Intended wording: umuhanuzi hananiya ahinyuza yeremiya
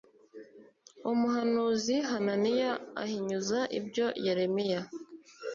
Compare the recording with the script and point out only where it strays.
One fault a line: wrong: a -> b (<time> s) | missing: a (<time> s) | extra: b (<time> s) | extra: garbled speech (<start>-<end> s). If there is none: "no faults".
extra: ibyo (3.8 s)